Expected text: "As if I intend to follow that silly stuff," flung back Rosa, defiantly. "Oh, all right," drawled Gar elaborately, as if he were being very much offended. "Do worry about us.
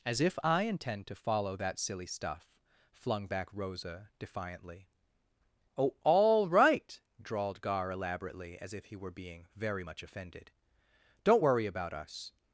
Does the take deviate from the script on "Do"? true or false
true